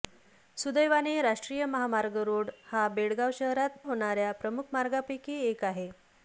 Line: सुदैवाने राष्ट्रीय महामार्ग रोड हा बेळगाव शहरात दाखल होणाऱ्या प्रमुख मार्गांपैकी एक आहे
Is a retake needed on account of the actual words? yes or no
yes